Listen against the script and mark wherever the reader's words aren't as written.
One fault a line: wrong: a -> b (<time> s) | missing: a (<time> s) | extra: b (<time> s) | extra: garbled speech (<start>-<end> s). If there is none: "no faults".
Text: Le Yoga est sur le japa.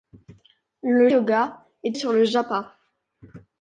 no faults